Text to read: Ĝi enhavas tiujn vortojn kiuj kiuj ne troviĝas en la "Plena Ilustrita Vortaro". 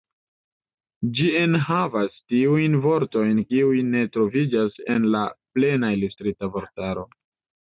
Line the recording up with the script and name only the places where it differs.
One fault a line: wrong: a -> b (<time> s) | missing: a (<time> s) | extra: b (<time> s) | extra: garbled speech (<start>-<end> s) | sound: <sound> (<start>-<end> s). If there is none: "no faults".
missing: kiuj (3.8 s)